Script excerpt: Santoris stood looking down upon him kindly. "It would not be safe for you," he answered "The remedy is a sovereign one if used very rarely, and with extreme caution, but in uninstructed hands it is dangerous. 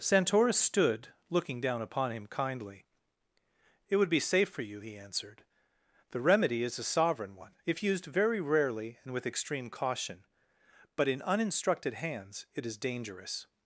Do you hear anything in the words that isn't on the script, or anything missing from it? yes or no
yes